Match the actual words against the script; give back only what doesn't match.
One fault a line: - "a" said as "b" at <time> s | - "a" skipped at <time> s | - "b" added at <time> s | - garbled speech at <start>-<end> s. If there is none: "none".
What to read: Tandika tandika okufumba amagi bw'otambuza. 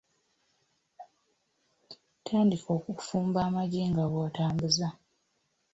- "tandika" skipped at 2.7 s
- "nga" added at 3.9 s